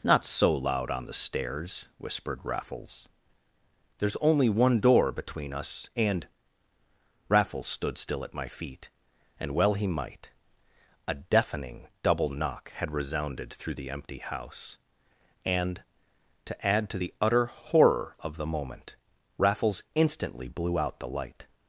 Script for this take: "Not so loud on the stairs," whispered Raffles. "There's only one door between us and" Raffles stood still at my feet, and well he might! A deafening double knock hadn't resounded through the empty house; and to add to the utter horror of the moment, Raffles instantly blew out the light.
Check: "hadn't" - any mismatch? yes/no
yes